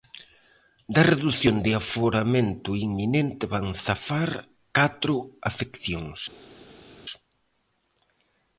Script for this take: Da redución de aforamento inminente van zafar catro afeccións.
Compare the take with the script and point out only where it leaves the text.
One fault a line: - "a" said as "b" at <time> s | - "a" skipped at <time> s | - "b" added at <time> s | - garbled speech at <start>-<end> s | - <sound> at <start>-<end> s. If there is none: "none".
none